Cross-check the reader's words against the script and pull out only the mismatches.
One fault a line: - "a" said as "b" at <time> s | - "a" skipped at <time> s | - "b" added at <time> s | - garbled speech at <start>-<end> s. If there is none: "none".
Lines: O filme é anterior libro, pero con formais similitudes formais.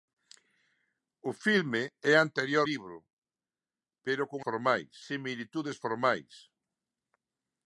none